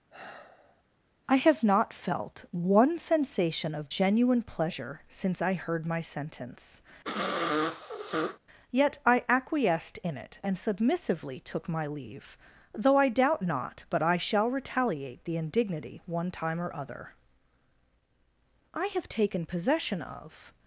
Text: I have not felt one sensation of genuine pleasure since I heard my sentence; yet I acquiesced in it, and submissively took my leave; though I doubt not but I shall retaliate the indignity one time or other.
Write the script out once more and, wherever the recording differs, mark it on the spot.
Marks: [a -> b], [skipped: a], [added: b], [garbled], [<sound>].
[sigh] I have not felt one sensation of genuine pleasure since I heard my sentence; [sniff] yet I acquiesced in it, and submissively took my leave; though I doubt not but I shall retaliate the indignity one time or other. [added: I have taken possession of]